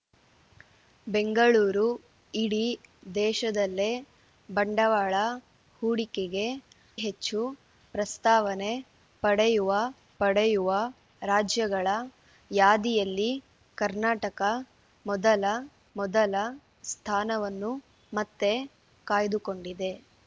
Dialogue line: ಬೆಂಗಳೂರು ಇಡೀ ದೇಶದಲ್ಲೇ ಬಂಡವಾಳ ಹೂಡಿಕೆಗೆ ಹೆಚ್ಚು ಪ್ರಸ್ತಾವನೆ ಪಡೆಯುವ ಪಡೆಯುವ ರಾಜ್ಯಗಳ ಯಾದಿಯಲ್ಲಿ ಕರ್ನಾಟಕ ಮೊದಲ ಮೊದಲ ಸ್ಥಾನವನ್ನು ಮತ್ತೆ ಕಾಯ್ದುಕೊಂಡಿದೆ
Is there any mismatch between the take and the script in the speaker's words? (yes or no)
no